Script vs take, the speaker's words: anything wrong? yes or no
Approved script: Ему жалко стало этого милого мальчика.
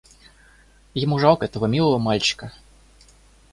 yes